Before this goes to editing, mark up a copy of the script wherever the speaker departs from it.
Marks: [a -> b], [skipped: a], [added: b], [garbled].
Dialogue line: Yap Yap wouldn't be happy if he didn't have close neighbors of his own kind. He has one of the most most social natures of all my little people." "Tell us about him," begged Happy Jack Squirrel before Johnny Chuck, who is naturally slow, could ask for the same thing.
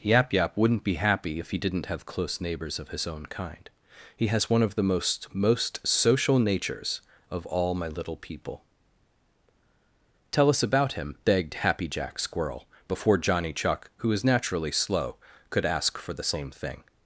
Yap Yap wouldn't be happy if he didn't have close neighbors of his own kind. He has one of the most most social natures of all my little people." "Tell us about him," begged Happy Jack Squirrel before Johnny Chuck, who is naturally slow, could ask for the same thing.